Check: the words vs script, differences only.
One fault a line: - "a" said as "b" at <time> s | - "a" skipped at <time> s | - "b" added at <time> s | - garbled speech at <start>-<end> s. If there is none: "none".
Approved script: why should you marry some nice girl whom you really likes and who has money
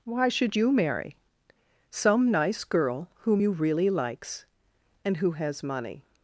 none